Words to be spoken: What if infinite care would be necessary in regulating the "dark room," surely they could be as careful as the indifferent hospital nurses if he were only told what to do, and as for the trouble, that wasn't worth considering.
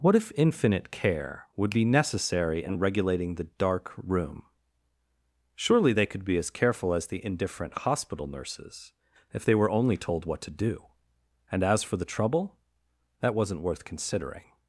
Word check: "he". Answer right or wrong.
wrong